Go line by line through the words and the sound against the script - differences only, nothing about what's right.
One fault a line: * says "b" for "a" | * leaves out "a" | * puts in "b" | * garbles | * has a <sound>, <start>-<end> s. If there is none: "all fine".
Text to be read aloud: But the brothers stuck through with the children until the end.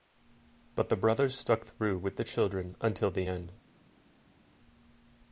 all fine